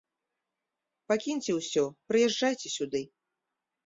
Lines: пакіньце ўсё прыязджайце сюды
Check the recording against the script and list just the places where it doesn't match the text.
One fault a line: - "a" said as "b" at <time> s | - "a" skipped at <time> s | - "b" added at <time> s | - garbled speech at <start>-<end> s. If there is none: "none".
none